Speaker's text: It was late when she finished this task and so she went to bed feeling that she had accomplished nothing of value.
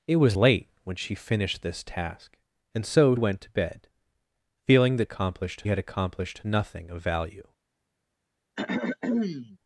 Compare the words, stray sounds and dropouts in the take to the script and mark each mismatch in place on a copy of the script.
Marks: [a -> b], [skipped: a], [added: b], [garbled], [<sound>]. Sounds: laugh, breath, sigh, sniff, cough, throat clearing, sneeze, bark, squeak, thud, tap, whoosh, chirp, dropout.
It was late when she finished this task and so [skipped: she] went to bed feeling that [she -> accomplished] had accomplished nothing of value. [throat clearing]